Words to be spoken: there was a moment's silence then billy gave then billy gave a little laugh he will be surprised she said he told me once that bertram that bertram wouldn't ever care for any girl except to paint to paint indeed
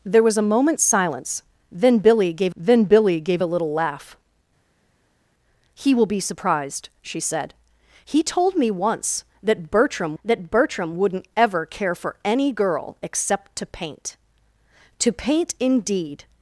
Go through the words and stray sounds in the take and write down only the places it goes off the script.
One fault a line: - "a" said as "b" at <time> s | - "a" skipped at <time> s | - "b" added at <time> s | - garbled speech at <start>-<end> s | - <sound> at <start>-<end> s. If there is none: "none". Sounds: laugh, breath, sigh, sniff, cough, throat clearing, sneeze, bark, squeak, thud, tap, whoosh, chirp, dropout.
none